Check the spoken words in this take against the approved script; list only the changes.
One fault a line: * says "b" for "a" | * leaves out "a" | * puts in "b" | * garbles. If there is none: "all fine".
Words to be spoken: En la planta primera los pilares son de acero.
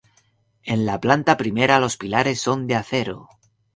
all fine